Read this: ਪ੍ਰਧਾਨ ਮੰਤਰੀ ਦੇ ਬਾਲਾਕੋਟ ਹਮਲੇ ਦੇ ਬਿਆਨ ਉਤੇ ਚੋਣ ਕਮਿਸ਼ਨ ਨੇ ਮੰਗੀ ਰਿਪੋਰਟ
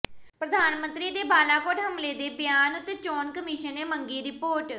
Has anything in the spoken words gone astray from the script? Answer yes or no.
no